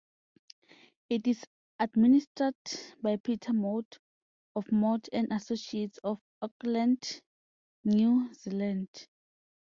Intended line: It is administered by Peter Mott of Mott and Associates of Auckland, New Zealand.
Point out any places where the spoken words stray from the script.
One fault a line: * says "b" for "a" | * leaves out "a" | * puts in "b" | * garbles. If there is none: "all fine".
all fine